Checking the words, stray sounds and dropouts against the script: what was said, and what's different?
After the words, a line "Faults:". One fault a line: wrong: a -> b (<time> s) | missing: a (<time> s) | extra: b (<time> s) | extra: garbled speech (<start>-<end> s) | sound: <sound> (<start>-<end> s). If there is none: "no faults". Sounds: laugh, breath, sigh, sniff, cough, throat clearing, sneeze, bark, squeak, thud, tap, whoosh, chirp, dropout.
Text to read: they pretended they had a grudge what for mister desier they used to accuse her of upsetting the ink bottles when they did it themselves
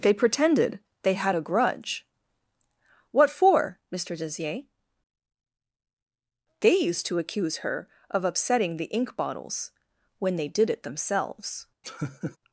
they pretended they had a grudge what for mister desier they used to accuse her of upsetting the ink bottles when they did it themselves
Faults:
sound: laugh (11.8-12.4 s)